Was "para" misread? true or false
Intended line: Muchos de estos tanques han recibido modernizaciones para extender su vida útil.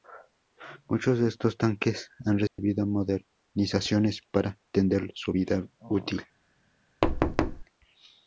false